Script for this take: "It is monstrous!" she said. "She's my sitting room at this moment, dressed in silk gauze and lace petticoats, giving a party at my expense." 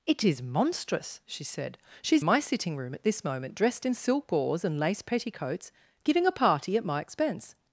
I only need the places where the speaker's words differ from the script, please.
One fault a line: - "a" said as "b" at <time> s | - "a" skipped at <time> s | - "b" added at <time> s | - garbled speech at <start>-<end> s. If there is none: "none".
none